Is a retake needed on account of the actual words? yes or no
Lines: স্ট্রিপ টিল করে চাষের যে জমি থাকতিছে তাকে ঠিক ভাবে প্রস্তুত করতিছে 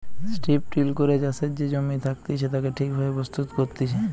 no